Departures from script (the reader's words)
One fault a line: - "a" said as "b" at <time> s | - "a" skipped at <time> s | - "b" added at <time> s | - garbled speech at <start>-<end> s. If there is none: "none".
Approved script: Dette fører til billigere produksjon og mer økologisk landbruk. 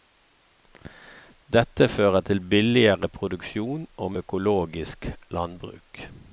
- "mer" skipped at 4.1 s